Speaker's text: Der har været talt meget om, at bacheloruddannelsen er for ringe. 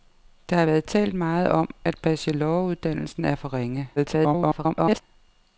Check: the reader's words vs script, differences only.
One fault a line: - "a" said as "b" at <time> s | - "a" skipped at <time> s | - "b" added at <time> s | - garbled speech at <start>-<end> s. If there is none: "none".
- garbled speech at 4.0-5.0 s